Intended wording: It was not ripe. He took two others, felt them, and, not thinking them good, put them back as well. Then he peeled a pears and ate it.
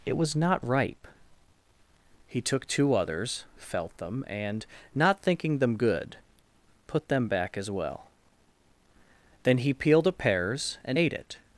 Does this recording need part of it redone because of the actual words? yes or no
no